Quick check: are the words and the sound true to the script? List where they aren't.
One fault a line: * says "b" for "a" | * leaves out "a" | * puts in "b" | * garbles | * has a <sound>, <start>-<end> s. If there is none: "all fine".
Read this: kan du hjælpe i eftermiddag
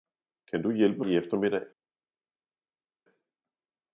all fine